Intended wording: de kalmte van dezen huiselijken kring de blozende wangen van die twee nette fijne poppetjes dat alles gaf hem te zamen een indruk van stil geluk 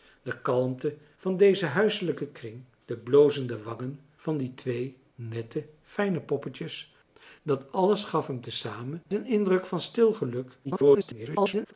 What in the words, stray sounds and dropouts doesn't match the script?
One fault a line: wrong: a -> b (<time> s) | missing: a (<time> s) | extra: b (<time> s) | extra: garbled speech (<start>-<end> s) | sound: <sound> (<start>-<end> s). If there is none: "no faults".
extra: garbled speech (10.6-11.7 s)